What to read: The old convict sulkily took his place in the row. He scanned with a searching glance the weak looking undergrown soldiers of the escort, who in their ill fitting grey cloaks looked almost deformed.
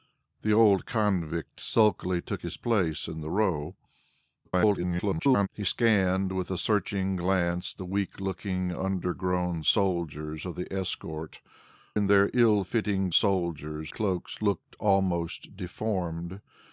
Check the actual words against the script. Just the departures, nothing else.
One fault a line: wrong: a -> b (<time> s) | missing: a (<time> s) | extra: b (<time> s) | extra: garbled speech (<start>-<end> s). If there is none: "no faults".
extra: garbled speech (4.4-5.5 s)
missing: who (11.4 s)
wrong: grey -> soldiers (13.1 s)